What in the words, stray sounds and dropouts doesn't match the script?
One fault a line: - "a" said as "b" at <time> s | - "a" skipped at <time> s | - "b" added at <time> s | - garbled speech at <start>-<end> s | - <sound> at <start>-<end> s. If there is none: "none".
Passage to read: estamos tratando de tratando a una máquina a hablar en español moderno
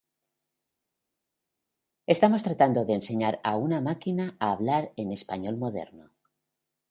- "tratando" said as "enseñar" at 2.9 s